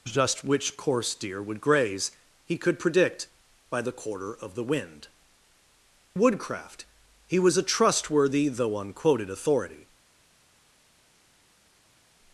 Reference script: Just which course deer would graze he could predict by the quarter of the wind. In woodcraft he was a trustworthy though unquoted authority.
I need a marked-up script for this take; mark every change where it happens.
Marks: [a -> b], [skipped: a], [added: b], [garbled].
Just which course deer would graze he could predict by the quarter of the wind. [skipped: In] woodcraft he was a trustworthy though unquoted authority.